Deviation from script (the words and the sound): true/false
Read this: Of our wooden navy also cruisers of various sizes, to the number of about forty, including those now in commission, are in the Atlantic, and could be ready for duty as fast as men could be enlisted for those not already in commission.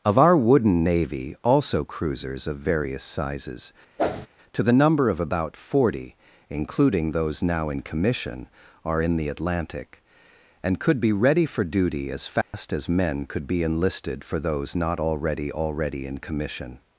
true